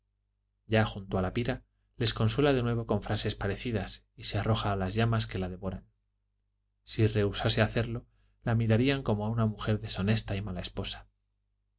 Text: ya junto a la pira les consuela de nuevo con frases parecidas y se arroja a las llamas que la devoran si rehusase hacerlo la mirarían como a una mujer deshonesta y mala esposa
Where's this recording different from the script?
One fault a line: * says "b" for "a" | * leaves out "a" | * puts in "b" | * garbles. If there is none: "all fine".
all fine